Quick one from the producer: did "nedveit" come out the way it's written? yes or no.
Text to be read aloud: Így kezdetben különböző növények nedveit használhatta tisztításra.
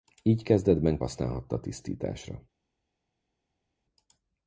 no